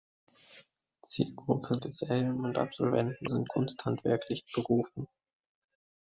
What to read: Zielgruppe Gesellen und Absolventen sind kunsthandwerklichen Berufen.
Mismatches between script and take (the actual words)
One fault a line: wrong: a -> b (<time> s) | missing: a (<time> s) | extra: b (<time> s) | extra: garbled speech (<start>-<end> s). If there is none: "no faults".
no faults